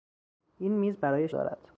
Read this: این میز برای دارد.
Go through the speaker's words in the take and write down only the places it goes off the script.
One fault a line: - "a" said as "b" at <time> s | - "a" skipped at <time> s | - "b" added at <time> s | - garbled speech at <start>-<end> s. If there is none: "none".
none